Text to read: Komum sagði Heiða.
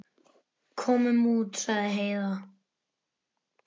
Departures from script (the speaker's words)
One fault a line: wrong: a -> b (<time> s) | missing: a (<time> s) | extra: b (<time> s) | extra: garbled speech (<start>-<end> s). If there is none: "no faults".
extra: út (1.4 s)